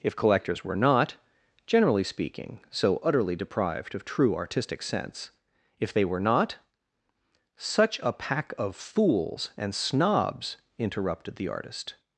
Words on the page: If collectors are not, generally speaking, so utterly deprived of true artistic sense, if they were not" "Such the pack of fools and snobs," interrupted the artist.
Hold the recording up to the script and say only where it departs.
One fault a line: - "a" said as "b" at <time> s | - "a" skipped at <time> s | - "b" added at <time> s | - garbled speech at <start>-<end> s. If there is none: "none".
- "are" said as "were" at 0.6 s
- "the" said as "a" at 8.0 s